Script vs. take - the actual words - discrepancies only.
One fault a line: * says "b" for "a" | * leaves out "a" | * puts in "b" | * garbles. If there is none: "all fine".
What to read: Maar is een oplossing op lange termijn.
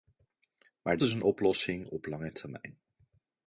all fine